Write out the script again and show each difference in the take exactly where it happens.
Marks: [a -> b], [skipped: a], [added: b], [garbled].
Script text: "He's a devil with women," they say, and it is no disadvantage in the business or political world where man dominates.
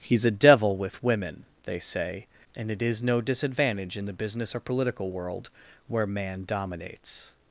"He's a devil with women," they say, and it is no disadvantage in the business or political world where man dominates.